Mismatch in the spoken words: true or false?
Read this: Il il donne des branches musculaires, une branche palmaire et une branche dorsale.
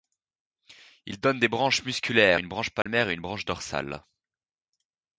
true